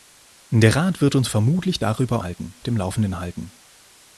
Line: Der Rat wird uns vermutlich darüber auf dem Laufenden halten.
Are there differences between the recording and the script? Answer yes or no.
yes